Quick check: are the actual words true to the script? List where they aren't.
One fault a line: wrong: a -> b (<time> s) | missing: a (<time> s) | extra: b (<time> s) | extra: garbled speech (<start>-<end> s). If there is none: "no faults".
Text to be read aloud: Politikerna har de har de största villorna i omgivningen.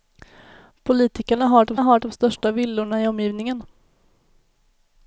no faults